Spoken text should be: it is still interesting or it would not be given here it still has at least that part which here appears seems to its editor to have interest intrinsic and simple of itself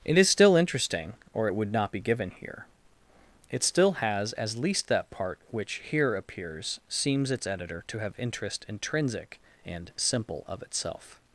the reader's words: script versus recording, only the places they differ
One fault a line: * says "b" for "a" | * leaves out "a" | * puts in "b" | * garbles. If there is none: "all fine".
* says "as" for "at"
* leaves out "to"